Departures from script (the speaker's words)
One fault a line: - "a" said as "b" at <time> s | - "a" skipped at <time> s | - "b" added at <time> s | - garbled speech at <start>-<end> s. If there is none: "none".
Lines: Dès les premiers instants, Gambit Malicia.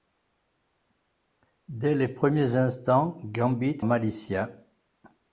none